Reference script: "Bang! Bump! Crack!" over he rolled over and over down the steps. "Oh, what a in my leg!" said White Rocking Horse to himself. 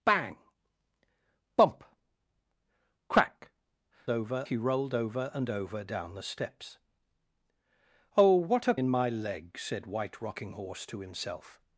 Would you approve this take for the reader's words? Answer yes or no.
yes